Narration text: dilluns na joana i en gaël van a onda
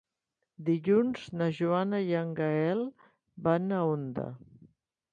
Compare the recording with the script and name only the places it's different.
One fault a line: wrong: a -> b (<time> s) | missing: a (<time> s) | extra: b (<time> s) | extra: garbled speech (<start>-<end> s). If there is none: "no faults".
no faults